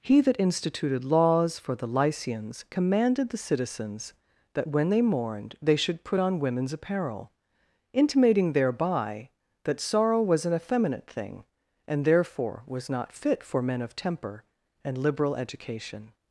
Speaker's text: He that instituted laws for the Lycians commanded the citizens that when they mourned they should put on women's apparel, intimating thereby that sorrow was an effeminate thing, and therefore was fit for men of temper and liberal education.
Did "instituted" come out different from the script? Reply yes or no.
no